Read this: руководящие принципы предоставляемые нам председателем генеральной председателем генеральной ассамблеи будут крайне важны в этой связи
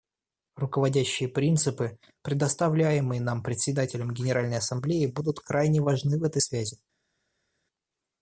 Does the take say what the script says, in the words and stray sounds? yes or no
no